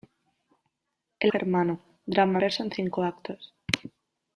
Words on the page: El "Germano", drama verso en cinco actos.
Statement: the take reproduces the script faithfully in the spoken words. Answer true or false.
true